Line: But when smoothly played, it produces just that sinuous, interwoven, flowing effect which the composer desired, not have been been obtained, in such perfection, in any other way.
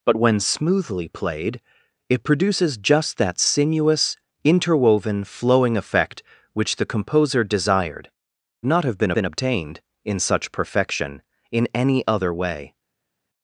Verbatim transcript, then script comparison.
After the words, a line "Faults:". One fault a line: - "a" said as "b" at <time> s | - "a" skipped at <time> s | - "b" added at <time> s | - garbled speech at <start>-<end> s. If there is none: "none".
But when smoothly played, it produces just that sinuous, interwoven, flowing effect which the composer desired, not have been been obtained, in such perfection, in any other way.
Faults:
none